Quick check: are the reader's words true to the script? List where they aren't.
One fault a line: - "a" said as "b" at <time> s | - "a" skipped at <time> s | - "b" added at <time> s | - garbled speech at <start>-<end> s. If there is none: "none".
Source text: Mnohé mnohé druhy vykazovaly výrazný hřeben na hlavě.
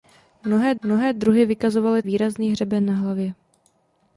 none